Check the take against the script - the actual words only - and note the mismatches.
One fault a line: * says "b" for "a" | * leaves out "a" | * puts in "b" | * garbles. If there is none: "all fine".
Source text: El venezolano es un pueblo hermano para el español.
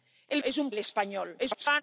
* leaves out "venezolano"
* leaves out "pueblo hermano para"
* garbles